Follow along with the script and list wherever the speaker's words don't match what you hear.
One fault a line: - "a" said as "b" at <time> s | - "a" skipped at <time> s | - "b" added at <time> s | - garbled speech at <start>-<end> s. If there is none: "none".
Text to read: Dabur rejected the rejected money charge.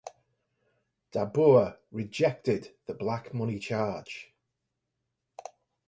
- "rejected" said as "black" at 2.9 s